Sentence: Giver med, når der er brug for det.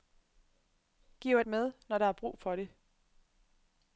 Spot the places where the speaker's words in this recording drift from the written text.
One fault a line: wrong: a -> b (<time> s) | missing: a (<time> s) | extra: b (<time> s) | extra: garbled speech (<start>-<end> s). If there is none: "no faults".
no faults